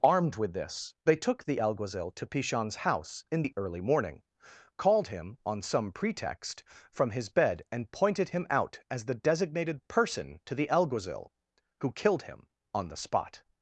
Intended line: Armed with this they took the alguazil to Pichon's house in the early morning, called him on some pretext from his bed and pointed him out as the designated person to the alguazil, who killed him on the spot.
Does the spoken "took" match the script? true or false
true